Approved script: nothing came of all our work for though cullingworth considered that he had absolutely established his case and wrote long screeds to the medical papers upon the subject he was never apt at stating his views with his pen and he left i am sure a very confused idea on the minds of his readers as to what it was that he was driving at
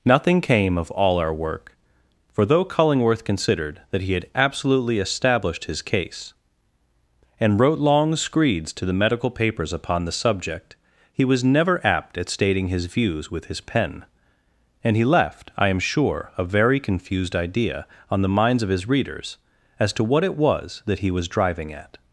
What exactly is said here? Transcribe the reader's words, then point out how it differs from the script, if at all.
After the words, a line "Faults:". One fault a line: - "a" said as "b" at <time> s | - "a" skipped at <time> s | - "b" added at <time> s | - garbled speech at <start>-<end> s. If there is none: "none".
nothing came of all our work for though cullingworth considered that he had absolutely established his case and wrote long screeds to the medical papers upon the subject he was never apt at stating his views with his pen and he left i am sure a very confused idea on the minds of his readers as to what it was that he was driving at
Faults:
none